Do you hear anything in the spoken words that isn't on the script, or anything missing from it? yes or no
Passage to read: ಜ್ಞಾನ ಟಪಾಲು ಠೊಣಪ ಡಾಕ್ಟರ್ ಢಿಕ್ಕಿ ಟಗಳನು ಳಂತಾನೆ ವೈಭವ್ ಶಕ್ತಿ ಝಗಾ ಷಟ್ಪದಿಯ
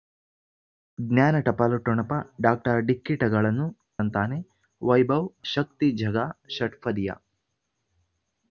no